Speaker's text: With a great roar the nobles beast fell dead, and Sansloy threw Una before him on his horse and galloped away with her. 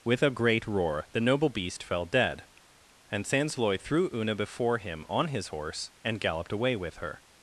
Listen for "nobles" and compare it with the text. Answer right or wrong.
wrong